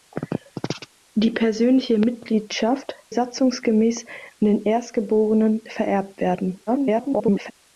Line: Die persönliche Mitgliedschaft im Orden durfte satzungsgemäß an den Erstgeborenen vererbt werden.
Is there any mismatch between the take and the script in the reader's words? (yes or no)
yes